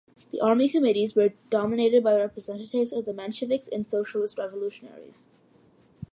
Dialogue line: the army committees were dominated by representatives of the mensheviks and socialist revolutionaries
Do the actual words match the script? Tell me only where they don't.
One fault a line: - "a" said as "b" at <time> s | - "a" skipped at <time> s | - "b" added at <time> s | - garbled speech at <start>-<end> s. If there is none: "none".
none